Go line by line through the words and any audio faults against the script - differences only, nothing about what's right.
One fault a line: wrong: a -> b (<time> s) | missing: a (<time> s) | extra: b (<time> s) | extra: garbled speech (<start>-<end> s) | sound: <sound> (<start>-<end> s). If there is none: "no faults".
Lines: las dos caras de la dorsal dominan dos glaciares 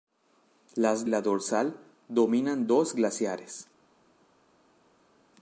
missing: dos caras de (1.1 s)